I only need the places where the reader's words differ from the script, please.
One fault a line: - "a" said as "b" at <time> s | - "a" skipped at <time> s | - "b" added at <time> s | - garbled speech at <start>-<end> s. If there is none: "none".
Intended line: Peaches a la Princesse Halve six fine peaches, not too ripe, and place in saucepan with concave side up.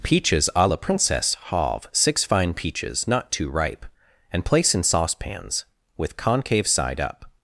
- "saucepan" said as "saucepans" at 4.8 s